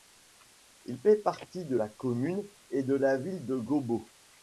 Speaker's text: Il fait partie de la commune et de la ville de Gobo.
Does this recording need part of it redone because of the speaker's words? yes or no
no